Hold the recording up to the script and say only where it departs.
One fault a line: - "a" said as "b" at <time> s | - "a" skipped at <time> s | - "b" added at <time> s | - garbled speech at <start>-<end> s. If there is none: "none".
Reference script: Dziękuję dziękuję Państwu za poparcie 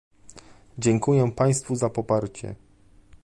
- "dziękuję" skipped at 1.3 s